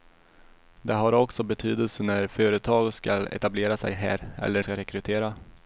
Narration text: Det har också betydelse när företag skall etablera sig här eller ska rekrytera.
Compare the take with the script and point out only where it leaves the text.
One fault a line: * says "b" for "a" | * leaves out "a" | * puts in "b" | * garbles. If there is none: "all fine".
all fine